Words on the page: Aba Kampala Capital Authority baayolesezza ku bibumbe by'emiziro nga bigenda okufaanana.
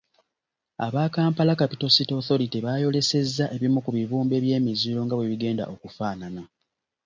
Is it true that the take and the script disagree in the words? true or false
true